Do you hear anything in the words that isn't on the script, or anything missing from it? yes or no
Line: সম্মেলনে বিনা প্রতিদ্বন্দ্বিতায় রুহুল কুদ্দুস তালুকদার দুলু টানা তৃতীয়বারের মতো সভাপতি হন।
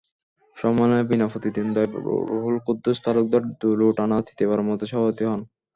no